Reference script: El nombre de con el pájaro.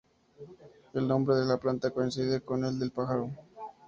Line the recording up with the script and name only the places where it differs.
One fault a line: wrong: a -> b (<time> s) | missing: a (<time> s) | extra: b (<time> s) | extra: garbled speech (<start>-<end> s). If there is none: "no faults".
extra: la planta coincide (1.4 s)
extra: del (2.8 s)